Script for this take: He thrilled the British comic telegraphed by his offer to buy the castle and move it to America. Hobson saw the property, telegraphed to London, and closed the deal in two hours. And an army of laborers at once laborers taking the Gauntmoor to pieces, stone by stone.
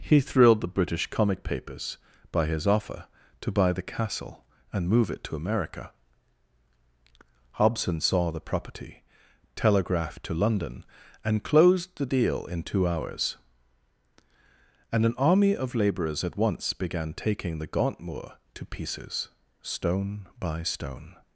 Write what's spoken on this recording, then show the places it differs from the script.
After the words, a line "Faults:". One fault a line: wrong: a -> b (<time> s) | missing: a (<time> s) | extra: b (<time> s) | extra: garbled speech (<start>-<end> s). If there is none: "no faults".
He thrilled the British comic papers by his offer to buy the castle and move it to America. Hobson saw the property, telegraphed to London, and closed the deal in two hours. And an army of laborers at once began taking the Gauntmoor to pieces, stone by stone.
Faults:
wrong: telegraphed -> papers (1.4 s)
wrong: laborers -> began (16.7 s)